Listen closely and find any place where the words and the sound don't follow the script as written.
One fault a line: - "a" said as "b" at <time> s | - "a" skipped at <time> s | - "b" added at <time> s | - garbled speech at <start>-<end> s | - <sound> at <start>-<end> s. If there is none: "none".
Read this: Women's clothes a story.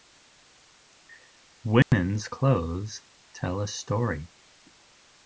- dropout at 1.8-1.9 s
- "tell" added at 3.3 s